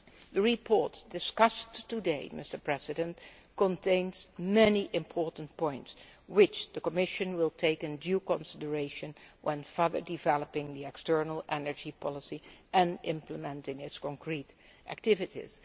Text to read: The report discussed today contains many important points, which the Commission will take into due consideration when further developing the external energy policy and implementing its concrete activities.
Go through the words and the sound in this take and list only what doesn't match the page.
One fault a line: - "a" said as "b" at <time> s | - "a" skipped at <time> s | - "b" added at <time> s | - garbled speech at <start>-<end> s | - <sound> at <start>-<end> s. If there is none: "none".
none